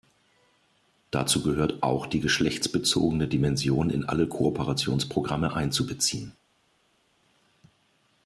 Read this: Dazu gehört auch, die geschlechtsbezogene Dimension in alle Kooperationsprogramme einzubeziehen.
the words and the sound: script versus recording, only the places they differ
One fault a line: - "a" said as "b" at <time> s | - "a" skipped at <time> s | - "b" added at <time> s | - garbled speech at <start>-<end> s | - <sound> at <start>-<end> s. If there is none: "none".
none